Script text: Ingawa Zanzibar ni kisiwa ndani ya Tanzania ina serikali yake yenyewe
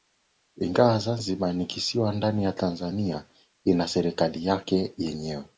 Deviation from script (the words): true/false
false